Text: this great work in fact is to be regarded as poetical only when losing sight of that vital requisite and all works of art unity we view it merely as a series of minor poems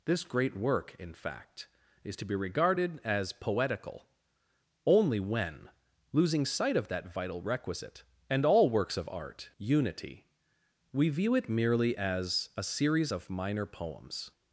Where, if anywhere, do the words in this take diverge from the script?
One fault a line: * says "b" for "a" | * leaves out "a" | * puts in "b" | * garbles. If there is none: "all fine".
all fine